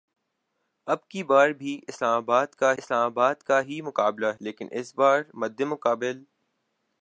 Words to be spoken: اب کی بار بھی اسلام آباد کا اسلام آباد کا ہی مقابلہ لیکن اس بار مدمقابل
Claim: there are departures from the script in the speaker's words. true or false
false